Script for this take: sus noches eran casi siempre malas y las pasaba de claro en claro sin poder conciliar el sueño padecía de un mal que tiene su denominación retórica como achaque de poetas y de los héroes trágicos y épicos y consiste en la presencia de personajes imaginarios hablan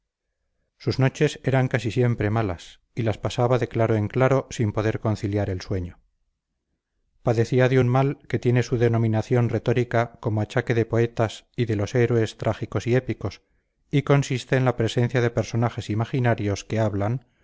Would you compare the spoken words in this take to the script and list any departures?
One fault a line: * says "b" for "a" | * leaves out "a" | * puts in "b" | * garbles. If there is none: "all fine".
* puts in "que"